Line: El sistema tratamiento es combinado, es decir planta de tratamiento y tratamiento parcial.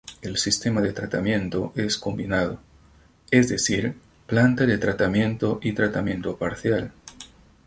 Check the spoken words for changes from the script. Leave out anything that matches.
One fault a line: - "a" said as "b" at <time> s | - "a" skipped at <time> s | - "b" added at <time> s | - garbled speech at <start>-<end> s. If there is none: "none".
- "de" added at 0.8 s